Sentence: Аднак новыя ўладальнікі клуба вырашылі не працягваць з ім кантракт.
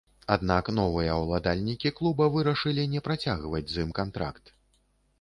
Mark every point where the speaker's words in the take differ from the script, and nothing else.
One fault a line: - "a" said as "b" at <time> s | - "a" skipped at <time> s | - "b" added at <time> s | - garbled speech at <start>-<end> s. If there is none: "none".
none